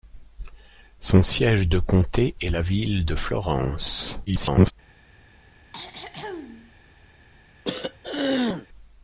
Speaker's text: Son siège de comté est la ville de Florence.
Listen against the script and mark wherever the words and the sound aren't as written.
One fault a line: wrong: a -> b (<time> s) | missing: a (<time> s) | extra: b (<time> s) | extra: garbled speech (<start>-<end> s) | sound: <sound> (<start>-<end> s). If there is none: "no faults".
extra: garbled speech (4.3-4.7 s)
sound: throat clearing (5.7-6.7 s)
sound: throat clearing (7.6-8.7 s)